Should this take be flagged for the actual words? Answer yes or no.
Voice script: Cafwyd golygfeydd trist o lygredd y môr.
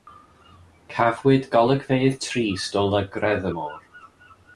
no